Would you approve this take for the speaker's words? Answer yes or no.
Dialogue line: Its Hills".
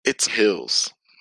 yes